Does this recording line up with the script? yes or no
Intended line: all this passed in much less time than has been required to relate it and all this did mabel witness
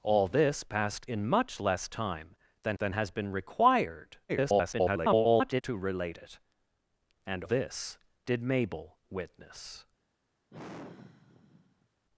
no